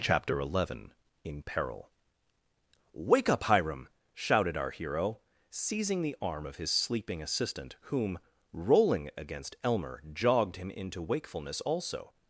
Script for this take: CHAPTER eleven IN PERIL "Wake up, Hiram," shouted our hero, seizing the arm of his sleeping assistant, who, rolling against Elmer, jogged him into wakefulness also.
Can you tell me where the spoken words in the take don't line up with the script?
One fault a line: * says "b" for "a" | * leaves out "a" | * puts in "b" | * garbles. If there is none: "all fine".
* says "whom" for "who"